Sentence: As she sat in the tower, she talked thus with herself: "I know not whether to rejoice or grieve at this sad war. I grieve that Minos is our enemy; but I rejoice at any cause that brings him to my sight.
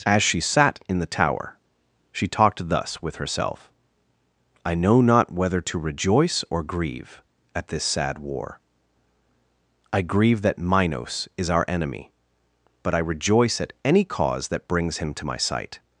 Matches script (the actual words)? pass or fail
pass